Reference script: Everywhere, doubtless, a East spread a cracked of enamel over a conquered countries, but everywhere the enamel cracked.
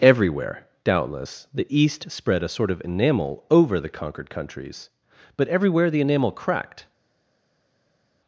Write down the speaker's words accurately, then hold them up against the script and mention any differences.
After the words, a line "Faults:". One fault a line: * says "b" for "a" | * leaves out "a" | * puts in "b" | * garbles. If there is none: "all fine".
Everywhere, doubtless, the East spread a sort of enamel over the conquered countries, but everywhere the enamel cracked.
Faults:
* says "the" for "a"
* says "sort" for "cracked"
* says "the" for "a"